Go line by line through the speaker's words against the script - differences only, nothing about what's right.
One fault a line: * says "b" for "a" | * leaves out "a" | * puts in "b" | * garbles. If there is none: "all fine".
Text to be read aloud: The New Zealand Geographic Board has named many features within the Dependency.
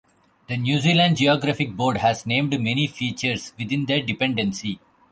all fine